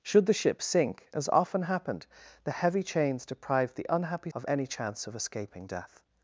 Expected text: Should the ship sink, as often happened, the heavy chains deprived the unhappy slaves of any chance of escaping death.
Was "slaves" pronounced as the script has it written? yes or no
no